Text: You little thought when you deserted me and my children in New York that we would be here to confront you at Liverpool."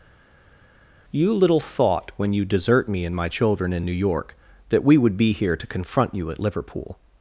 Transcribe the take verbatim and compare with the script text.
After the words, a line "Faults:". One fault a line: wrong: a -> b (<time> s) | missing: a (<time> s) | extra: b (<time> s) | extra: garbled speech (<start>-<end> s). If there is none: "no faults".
You little thought when you desert me and my children in New York that we would be here to confront you at Liverpool."
Faults:
wrong: deserted -> desert (2.4 s)